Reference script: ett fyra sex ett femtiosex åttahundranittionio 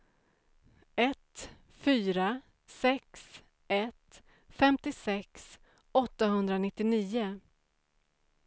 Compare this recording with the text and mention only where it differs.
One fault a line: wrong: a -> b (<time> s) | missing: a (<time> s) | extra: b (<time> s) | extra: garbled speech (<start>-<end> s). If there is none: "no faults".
no faults